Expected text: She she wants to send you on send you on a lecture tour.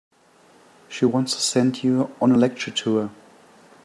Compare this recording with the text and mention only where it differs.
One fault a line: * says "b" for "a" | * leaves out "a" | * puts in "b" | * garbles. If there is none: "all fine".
* leaves out "she"
* leaves out "send you on"